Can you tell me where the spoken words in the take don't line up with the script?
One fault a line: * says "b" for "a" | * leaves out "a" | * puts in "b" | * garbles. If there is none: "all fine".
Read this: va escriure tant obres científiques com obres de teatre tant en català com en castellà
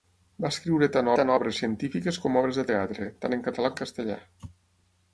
* puts in "tant"
* leaves out "com"